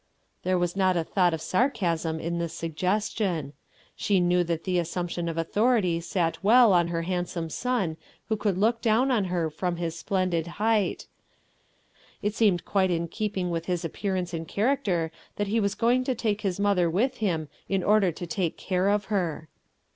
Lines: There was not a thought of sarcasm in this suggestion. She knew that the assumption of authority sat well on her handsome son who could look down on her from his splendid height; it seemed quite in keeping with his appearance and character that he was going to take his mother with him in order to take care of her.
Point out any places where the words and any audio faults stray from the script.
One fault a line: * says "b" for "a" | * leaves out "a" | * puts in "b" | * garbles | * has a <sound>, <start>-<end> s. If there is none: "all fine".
all fine